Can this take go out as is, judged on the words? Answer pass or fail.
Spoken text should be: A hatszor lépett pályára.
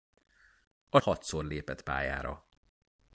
pass